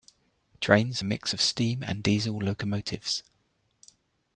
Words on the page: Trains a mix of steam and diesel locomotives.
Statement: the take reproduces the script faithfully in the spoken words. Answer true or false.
true